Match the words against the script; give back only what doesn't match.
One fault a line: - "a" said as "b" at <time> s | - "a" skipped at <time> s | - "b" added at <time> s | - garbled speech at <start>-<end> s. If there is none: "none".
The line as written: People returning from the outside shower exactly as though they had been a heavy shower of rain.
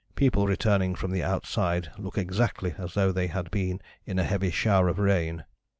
- "shower" said as "look" at 2.0 s
- "in" added at 4.1 s